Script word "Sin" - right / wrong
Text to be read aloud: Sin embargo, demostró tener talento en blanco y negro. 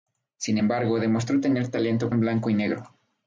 right